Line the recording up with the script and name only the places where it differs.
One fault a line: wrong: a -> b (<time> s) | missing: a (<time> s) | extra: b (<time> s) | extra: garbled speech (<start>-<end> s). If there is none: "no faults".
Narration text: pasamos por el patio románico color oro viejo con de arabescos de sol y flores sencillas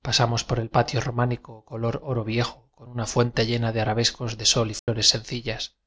extra: una fuente llena (2.9 s)